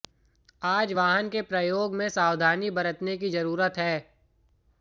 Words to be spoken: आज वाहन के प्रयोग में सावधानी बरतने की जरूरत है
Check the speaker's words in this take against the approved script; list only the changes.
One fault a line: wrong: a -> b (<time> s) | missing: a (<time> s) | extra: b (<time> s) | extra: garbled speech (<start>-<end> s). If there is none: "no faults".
no faults